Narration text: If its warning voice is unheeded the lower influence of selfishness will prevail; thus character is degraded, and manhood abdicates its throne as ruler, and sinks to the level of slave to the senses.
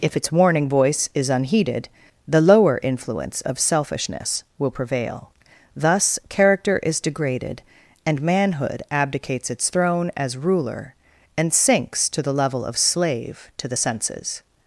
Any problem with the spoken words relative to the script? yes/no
no